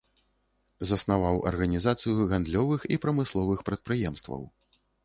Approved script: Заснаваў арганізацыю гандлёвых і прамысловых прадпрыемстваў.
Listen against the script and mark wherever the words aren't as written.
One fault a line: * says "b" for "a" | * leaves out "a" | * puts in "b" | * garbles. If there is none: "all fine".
all fine